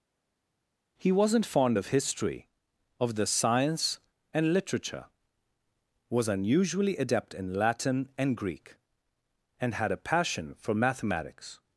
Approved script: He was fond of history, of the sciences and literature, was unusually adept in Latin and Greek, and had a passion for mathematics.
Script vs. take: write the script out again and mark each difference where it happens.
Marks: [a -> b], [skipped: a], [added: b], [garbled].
He [was -> wasn't] fond of history, of the [sciences -> science] and literature, was unusually adept in Latin and Greek, and had a passion for mathematics.